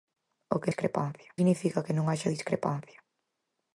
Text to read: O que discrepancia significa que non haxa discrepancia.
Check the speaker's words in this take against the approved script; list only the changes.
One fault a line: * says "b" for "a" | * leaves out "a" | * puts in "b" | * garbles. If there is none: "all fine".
all fine